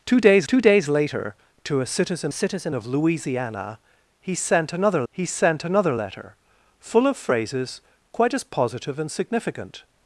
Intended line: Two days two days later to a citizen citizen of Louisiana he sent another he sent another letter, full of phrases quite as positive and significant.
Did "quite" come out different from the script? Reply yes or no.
no